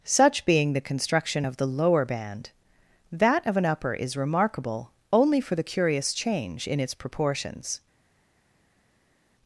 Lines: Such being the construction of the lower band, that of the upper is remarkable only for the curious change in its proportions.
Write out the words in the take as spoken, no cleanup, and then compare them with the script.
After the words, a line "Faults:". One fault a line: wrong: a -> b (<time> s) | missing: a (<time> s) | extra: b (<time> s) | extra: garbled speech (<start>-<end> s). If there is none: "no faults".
Such being the construction of the lower band, that of an upper is remarkable only for the curious change in its proportions.
Faults:
wrong: the -> an (3.6 s)